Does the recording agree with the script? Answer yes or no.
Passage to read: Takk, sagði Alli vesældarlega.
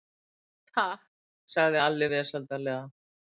yes